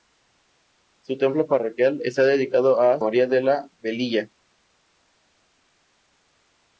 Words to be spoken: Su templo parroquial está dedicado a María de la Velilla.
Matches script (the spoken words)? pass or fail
pass